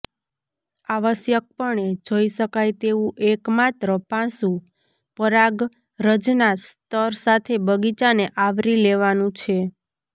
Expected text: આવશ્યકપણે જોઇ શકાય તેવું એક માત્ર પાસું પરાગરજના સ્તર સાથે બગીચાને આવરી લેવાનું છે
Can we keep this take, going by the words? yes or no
yes